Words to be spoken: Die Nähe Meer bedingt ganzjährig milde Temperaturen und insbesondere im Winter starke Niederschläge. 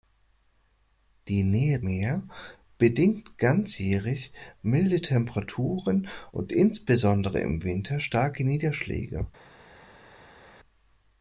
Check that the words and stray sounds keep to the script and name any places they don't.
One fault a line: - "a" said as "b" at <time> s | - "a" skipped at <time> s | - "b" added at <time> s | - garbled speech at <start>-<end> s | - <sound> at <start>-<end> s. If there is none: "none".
none